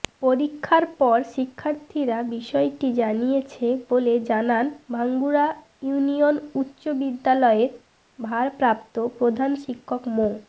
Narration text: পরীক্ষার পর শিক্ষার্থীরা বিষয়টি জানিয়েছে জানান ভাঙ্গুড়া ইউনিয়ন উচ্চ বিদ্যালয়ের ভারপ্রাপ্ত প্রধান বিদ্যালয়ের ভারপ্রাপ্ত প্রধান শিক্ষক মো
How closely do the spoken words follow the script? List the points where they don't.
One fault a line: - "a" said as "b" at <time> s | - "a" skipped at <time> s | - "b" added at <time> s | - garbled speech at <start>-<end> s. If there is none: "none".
- "বলে" added at 3.9 s
- "বিদ্যালয়ের ভারপ্রাপ্ত প্রধান" skipped at 9.5 s